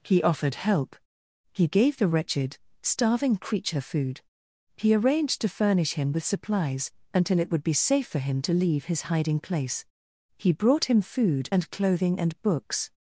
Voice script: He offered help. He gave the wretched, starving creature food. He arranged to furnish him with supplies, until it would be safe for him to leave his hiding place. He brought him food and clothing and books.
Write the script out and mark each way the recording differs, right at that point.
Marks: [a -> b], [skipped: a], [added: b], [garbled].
He offered help. He gave the wretched, starving creature food. He arranged to furnish him with supplies, until it would be safe for him to leave his hiding place. He brought him food and clothing and books.